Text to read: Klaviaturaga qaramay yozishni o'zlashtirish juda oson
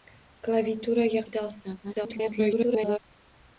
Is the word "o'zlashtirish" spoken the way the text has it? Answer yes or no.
no